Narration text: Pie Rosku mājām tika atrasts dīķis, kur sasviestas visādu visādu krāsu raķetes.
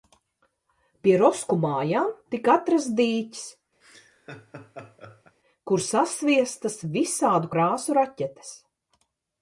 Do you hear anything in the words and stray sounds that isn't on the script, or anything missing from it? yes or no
yes